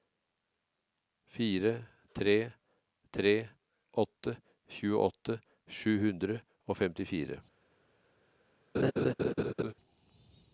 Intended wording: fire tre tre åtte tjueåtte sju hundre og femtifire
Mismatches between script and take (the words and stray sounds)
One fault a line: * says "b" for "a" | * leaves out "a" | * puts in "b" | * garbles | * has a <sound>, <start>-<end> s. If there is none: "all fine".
* has a laugh, 8.7-9.7 s